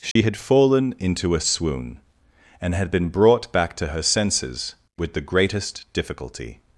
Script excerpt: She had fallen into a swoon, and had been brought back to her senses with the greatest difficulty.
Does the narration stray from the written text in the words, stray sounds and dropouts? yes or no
yes